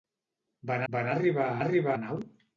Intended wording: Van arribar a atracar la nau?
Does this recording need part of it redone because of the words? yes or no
yes